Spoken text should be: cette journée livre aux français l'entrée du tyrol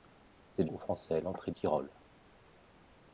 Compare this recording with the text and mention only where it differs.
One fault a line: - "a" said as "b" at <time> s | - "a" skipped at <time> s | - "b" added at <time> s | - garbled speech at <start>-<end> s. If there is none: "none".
- "journée livre" skipped at 0.7 s
- "du" skipped at 1.5 s